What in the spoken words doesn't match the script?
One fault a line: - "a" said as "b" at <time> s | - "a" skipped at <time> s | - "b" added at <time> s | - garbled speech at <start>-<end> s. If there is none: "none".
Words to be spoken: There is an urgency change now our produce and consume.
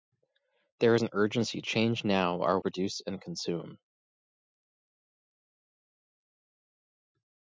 none